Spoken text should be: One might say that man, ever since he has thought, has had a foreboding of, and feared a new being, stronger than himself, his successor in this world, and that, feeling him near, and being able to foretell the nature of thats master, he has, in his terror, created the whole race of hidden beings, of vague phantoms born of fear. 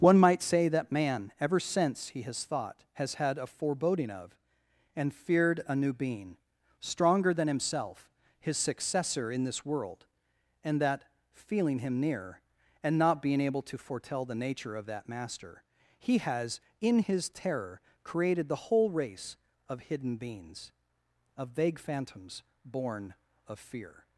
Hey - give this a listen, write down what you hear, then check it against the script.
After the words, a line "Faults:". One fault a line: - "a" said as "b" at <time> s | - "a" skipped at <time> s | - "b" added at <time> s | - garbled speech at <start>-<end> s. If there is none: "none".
One might say that man, ever since he has thought, has had a foreboding of, and feared a new being, stronger than himself, his successor in this world, and that, feeling him near, and not being able to foretell the nature of that master, he has, in his terror, created the whole race of hidden beings, of vague phantoms born of fear.
Faults:
- "not" added at 13.0 s
- "thats" said as "that" at 14.9 s